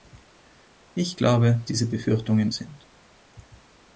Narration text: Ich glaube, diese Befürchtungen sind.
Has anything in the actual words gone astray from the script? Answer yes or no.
no